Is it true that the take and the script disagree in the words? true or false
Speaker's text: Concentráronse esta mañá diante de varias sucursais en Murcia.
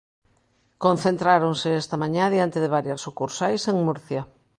false